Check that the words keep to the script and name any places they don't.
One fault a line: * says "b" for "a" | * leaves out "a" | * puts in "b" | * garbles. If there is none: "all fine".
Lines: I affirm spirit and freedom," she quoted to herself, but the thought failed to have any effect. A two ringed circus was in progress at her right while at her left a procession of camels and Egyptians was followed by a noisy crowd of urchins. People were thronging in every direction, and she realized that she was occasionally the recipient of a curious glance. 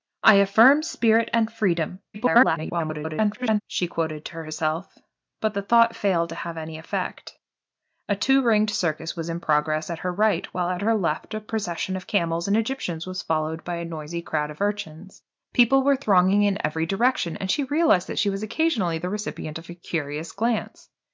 * garbles